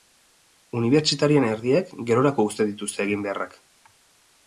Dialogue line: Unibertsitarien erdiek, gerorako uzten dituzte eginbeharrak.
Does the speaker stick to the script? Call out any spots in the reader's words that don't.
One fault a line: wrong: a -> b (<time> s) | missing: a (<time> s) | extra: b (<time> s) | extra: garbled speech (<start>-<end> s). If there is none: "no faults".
no faults